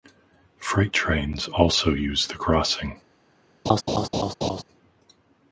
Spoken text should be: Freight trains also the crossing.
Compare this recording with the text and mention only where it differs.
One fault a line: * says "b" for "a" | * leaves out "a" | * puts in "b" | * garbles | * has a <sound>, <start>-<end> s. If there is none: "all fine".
* puts in "use"
* has a laugh, 3.7-4.6 s